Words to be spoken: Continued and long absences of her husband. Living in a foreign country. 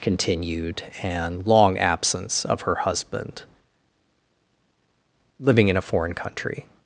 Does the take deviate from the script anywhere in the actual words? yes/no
yes